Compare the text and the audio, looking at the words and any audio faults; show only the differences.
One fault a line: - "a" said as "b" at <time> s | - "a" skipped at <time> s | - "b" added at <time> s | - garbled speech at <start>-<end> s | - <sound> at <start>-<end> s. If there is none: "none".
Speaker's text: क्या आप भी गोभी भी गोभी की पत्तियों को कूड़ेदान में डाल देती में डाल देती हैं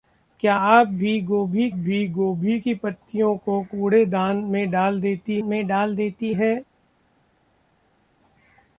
none